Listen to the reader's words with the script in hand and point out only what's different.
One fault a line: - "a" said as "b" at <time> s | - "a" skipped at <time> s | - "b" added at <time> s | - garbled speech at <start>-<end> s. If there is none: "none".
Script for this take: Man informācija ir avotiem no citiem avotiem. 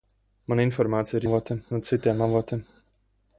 none